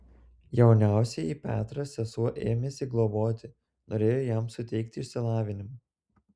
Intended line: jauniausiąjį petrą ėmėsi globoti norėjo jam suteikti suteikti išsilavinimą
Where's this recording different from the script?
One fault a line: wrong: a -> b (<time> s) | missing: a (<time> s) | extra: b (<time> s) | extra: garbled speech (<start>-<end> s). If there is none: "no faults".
extra: sesuo (1.9 s)
missing: suteikti (5.0 s)